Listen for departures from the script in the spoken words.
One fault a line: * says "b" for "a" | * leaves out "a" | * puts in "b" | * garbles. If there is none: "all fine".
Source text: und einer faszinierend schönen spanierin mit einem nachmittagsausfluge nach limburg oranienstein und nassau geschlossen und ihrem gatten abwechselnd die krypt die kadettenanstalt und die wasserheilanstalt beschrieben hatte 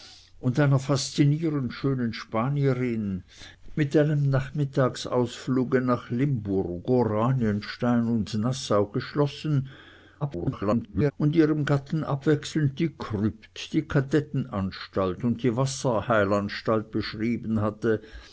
* garbles